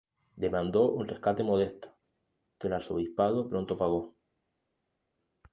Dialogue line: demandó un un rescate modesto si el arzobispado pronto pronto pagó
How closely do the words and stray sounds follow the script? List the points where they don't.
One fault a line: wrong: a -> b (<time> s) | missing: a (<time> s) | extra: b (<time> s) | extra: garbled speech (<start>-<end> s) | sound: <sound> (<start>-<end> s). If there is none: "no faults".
missing: un (1.1 s)
wrong: si -> que (2.6 s)
missing: pronto (3.8 s)